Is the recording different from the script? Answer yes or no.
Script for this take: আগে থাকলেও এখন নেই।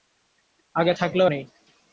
yes